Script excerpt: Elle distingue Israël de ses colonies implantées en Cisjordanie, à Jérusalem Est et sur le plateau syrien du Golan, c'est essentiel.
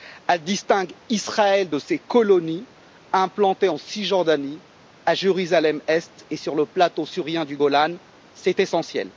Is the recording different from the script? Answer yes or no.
no